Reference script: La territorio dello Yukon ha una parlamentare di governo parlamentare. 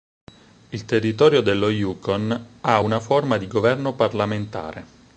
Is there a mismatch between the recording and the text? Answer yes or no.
yes